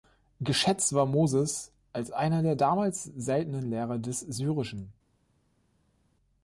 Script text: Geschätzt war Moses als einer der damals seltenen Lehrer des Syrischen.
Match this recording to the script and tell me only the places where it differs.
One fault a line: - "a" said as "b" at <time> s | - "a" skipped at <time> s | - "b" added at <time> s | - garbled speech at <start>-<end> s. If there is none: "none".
none